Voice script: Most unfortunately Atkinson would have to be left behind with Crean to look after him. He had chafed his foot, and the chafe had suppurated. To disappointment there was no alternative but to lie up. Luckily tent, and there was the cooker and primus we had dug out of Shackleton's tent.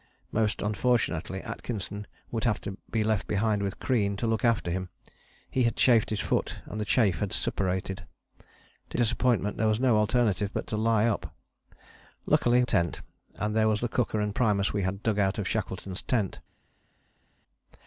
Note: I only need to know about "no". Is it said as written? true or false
true